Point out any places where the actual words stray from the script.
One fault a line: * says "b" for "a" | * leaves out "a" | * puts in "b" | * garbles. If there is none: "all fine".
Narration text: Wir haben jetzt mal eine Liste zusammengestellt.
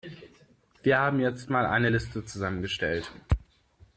all fine